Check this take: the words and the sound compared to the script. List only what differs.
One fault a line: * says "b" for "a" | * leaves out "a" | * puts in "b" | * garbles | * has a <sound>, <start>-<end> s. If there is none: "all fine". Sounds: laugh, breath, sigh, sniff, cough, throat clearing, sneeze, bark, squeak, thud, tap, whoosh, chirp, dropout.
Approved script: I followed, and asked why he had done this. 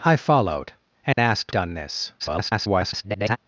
* has a dropout, 1.1-1.2 s
* leaves out "why he had"
* garbles